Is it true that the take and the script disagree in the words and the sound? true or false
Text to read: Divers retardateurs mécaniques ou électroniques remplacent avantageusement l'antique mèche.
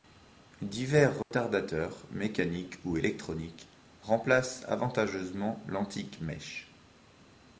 true